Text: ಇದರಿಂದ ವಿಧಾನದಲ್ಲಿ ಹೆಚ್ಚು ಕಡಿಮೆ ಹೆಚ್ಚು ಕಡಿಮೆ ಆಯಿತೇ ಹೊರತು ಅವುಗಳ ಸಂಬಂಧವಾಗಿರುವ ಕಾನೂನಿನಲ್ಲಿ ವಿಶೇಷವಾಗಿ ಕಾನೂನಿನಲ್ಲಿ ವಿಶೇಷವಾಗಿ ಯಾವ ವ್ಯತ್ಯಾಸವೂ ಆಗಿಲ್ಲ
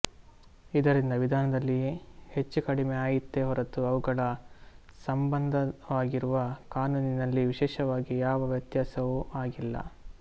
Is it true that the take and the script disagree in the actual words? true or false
true